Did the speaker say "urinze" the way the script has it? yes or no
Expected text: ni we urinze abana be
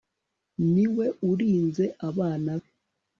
yes